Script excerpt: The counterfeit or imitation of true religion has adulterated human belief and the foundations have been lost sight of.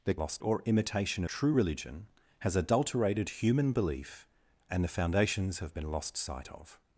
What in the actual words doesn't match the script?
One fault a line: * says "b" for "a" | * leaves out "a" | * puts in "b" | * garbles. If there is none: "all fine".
* says "lost" for "counterfeit"
* leaves out "of"